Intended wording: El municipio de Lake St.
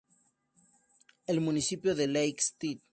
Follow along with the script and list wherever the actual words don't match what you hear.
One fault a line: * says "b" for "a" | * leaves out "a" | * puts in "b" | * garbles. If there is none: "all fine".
all fine